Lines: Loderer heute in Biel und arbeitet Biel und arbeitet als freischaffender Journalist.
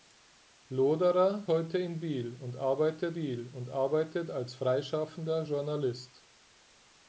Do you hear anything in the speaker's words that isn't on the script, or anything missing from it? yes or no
no